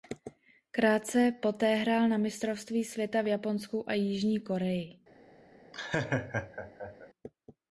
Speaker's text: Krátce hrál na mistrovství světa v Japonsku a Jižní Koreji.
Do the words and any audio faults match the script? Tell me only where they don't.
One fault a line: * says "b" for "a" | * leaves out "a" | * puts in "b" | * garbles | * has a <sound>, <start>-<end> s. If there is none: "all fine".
* puts in "poté"
* has a laugh, 5.7-7.1 s